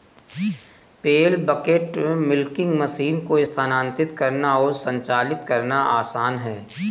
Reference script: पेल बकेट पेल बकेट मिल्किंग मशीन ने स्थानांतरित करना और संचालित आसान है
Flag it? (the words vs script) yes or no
yes